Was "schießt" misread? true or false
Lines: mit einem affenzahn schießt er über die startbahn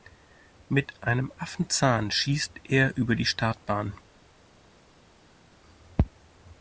false